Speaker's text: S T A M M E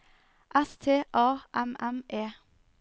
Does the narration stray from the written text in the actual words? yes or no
no